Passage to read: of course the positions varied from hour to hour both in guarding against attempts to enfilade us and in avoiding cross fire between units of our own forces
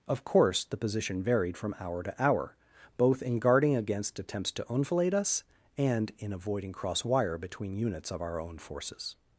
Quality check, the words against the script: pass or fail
fail